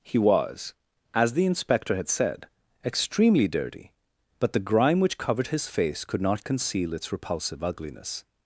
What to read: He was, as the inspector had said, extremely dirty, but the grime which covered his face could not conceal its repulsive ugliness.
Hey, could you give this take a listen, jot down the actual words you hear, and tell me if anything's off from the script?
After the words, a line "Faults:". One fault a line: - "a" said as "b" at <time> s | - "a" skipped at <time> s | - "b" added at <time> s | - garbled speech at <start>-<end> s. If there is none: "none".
He was, as the inspector had said, extremely dirty, but the grime which covered his face could not conceal its repulsive ugliness.
Faults:
none